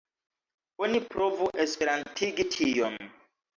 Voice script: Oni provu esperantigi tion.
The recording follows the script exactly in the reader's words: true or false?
true